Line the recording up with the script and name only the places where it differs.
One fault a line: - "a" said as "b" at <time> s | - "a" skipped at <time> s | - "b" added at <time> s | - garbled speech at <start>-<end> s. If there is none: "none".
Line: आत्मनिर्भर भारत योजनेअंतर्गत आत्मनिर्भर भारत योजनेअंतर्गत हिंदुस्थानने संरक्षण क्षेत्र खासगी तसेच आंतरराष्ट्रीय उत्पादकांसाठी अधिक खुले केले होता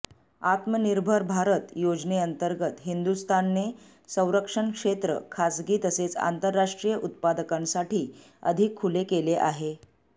- "आत्मनिर्भर भारत योजनेअंतर्गत" skipped at 2.8 s
- "होता" said as "आहे" at 9.4 s